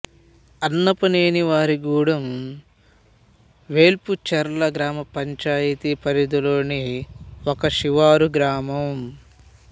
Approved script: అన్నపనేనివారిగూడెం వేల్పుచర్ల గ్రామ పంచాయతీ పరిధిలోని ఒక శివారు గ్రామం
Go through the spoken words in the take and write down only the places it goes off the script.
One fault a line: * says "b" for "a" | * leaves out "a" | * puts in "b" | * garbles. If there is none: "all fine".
all fine